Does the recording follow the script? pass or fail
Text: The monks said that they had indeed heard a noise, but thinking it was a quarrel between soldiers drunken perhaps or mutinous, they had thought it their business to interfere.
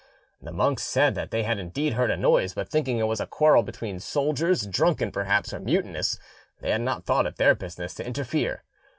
fail